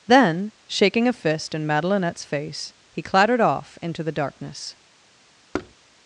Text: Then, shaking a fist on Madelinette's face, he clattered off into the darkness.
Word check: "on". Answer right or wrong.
wrong